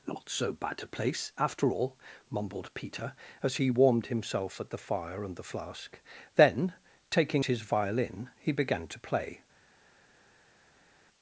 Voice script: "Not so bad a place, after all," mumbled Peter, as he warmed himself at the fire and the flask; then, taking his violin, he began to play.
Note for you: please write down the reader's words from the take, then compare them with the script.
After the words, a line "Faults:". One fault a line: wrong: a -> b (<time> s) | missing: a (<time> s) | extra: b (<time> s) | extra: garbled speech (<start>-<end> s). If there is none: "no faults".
"Not so bad a place, after all," mumbled Peter, as he warmed himself at the fire and the flask; then, taking his violin, he began to play.
Faults:
no faults